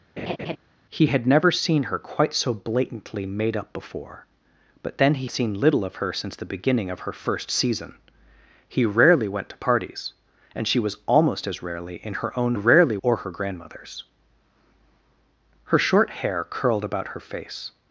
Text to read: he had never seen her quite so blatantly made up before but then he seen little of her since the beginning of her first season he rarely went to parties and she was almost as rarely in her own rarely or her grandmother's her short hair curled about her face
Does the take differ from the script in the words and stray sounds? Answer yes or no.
yes